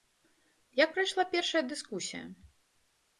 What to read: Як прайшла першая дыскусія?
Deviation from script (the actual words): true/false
false